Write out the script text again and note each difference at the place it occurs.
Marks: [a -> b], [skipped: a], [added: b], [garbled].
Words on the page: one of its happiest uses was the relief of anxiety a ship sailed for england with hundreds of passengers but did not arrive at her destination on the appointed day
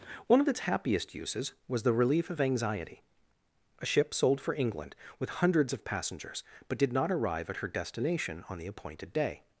one of its happiest uses was the relief of anxiety a ship [sailed -> sold] for england with hundreds of passengers but did not arrive at her destination on the appointed day